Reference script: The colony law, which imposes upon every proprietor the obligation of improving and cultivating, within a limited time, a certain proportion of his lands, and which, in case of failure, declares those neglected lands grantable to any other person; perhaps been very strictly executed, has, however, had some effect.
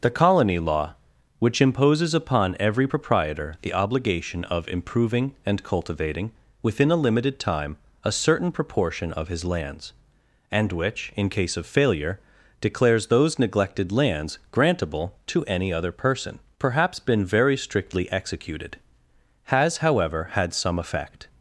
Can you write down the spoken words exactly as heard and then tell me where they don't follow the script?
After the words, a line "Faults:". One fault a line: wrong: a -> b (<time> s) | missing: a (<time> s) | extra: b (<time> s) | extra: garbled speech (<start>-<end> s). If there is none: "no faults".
The colony law, which imposes upon every proprietor the obligation of improving and cultivating, within a limited time, a certain proportion of his lands, and which, in case of failure, declares those neglected lands grantable to any other person; perhaps been very strictly executed, has, however, had some effect.
Faults:
no faults